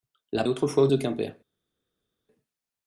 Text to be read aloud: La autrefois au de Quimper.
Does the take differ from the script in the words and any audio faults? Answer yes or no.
no